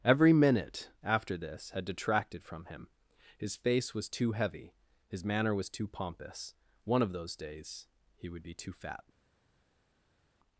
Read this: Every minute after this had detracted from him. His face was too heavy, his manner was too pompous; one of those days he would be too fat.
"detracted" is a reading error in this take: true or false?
false